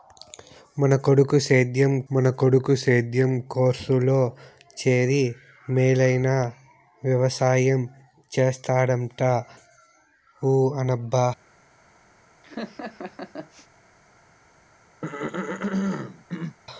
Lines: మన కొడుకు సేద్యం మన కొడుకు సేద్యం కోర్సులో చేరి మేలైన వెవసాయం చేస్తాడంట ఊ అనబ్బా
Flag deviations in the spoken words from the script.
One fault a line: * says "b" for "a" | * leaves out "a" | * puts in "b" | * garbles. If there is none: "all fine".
all fine